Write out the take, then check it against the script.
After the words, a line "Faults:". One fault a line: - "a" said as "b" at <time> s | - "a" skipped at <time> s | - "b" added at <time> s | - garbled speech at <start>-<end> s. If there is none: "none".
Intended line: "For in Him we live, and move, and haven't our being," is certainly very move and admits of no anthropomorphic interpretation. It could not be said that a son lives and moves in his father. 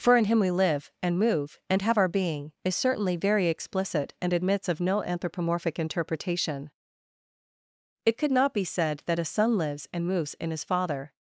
"For in Him we live, and move, and have our being," is certainly very explicit and admits of no anthropomorphic interpretation. It could not be said that a son lives and moves in his father.
Faults:
- "haven't" said as "have" at 1.8 s
- "move" said as "explicit" at 3.5 s